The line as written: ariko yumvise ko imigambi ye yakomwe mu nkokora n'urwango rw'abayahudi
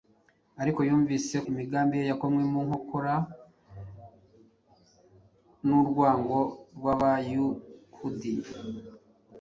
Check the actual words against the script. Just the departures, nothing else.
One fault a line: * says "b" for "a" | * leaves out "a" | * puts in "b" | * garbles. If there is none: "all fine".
* leaves out "ko"